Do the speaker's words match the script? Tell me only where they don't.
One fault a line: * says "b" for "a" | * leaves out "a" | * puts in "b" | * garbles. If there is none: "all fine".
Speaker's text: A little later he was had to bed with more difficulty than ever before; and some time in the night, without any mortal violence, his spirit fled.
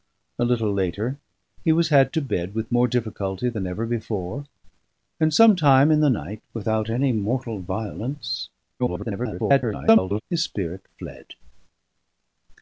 * garbles